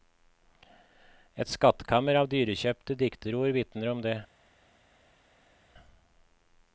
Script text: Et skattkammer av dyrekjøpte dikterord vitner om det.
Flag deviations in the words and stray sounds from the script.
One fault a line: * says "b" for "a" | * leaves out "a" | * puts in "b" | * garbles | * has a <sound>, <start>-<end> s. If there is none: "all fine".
all fine